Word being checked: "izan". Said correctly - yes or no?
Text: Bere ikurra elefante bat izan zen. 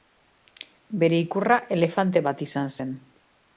yes